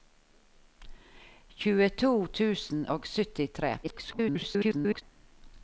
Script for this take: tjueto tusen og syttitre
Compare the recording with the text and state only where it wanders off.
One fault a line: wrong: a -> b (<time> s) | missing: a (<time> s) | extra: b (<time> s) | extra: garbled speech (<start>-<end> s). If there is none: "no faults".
extra: garbled speech (3.8-5.0 s)